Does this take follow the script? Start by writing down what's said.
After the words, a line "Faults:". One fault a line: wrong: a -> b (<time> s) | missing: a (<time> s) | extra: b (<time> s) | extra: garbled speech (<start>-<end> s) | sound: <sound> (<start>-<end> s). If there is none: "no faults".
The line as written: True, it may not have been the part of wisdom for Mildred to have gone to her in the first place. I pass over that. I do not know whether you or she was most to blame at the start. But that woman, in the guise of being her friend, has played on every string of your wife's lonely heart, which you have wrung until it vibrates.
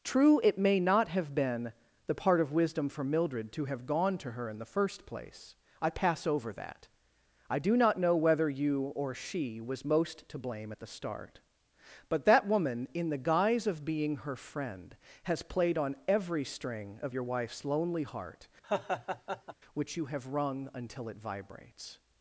True, it may not have been the part of wisdom for Mildred to have gone to her in the first place. I pass over that. I do not know whether you or she was most to blame at the start. But that woman, in the guise of being her friend, has played on every string of your wife's lonely heart, which you have wrung until it vibrates.
Faults:
sound: laugh (18.6-19.5 s)